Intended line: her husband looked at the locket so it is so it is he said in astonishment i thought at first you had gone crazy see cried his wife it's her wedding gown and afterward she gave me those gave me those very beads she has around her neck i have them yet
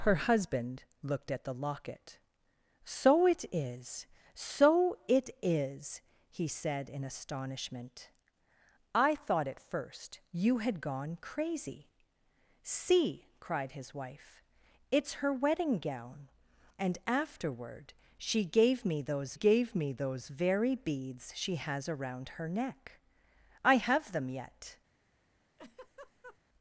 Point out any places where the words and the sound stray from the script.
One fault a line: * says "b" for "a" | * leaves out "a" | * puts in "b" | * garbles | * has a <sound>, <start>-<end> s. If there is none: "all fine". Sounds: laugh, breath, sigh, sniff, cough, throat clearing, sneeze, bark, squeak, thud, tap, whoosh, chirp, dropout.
* has a laugh, 25.6-26.4 s